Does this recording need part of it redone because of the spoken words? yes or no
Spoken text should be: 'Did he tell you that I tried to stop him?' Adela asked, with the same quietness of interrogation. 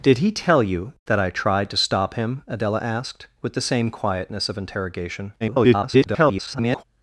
yes